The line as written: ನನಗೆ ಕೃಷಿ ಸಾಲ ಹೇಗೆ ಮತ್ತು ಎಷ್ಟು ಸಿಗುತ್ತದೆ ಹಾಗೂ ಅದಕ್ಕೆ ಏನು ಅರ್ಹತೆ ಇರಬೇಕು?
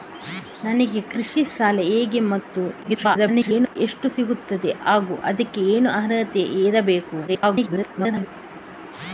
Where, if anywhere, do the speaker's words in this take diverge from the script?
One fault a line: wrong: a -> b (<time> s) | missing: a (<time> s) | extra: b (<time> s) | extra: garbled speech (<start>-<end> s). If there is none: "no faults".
extra: garbled speech (2.8-3.8 s)
extra: garbled speech (7.3-8.3 s)